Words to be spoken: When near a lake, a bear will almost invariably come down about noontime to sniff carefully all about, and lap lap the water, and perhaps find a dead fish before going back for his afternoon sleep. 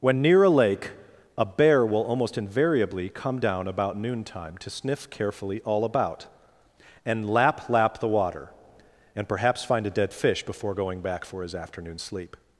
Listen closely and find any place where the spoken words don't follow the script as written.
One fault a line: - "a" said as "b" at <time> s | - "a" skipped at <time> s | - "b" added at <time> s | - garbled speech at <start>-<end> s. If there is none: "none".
none